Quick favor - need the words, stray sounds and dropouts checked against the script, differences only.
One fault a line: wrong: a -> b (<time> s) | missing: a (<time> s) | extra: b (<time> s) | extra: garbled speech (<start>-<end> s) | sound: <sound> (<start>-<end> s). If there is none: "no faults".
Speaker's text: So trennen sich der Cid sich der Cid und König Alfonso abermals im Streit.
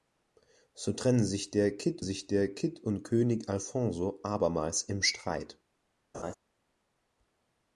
sound: laugh (6.1-6.3 s)